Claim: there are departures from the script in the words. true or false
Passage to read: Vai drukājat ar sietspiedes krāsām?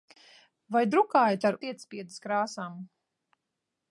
false